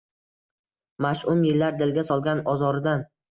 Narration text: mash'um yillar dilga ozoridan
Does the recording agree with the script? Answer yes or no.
no